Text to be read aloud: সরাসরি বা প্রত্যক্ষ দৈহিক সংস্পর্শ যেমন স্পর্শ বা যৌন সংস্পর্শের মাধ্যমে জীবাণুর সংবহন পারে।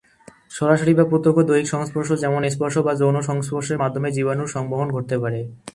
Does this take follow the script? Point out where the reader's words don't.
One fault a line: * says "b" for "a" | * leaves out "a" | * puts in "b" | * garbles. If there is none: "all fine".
* puts in "ঘটতে"